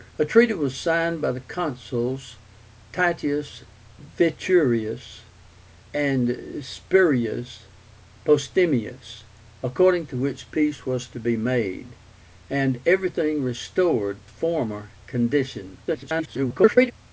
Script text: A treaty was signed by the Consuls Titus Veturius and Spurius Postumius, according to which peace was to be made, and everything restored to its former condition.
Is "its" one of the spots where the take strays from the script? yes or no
yes